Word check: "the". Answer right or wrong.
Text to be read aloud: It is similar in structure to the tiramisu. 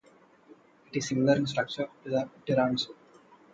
right